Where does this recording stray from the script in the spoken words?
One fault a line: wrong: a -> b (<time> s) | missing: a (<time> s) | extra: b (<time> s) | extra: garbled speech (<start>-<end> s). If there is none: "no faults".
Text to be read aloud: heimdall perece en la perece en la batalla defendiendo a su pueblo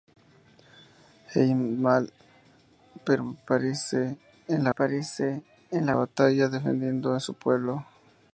no faults